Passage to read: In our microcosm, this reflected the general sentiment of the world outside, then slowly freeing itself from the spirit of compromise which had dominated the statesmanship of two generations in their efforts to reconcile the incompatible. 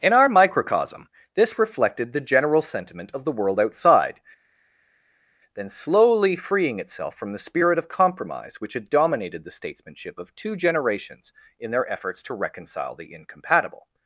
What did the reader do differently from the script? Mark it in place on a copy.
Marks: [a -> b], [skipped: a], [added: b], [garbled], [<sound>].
In our microcosm, this reflected the general sentiment of the world outside, then slowly freeing itself from the spirit of compromise which had dominated the statesmanship of two generations in their efforts to reconcile the incompatible.